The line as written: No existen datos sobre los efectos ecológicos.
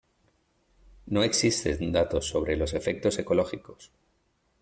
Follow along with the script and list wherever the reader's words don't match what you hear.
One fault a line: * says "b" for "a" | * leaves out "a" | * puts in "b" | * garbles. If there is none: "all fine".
all fine